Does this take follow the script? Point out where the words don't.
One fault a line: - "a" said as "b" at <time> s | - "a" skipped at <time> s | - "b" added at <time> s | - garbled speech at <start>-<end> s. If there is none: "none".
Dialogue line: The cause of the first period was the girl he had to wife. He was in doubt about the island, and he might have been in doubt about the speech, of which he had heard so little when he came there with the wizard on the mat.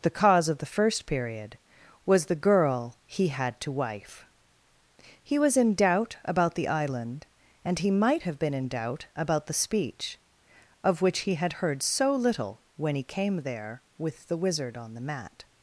none